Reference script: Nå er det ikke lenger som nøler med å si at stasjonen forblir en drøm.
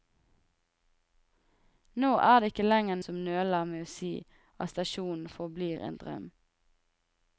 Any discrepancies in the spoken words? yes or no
no